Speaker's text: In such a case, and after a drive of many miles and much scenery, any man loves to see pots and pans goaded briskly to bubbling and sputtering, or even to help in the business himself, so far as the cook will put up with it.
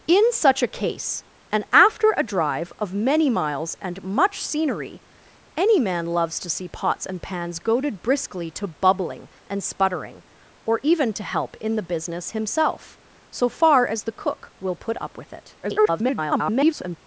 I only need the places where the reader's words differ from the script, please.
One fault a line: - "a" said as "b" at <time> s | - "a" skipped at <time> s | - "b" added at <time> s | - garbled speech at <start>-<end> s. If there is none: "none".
- garbled speech at 15.6-17.0 s